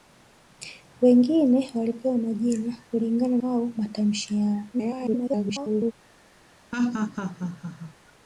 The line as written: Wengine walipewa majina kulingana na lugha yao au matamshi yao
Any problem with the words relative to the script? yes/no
yes